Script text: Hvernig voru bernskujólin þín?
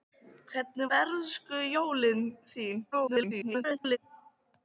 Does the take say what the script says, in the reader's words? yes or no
no